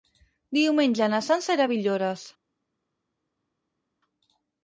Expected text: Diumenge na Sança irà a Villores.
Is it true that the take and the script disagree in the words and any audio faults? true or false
false